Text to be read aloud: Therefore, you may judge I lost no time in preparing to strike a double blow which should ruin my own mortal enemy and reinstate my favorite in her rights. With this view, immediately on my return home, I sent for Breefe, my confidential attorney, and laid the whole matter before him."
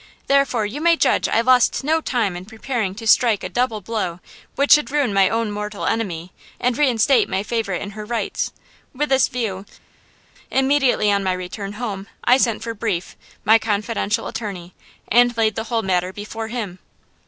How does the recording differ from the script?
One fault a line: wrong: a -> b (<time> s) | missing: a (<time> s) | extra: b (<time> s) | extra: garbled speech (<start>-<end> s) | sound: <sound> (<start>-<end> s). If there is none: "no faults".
no faults